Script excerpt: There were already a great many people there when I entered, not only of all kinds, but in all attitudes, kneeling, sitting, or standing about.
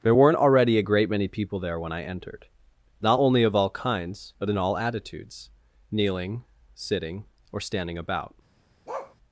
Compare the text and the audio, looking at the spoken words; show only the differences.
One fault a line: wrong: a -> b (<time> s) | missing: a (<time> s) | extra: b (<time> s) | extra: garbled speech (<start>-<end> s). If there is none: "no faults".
wrong: were -> weren't (0.1 s)